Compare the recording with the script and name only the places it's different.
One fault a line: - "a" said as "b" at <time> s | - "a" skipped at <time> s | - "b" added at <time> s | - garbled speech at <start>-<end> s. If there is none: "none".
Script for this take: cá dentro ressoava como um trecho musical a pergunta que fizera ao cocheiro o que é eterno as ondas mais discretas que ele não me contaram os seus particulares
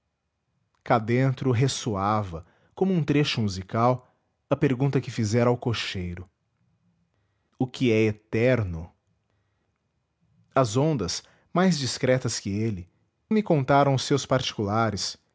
- "não" skipped at 12.9 s